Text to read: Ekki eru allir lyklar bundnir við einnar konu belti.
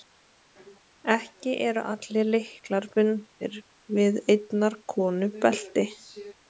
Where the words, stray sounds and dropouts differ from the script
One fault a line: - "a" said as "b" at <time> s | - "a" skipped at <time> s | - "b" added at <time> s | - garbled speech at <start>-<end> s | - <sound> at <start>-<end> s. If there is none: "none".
none